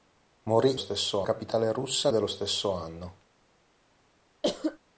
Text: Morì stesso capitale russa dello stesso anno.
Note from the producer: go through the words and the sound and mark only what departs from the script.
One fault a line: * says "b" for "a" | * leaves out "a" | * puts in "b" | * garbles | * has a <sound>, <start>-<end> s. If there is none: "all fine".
* has a cough, 4.4-4.8 s